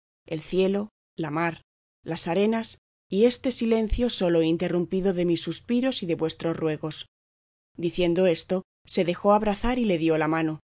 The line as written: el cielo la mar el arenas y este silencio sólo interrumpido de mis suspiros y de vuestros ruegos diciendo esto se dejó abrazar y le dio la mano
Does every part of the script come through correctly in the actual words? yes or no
no